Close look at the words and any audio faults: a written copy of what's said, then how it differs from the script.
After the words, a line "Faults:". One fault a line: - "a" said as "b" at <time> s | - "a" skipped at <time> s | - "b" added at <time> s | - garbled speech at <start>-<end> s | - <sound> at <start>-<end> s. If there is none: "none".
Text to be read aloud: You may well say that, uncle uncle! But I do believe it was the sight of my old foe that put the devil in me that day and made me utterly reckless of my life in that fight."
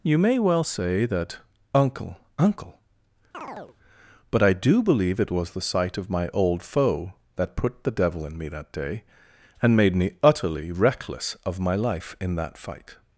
You may well say that, uncle uncle! But I do believe it was the sight of my old foe that put the devil in me that day and made me utterly reckless of my life in that fight."
Faults:
- chirp at 3.3-3.8 s